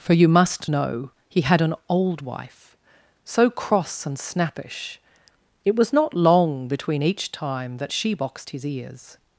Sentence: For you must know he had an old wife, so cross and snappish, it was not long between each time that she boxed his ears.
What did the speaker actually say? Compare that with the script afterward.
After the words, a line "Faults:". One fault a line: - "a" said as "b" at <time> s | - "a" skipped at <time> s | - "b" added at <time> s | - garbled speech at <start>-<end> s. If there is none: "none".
For you must know he had an old wife, so cross and snappish, it was not long between each time that she boxed his ears.
Faults:
none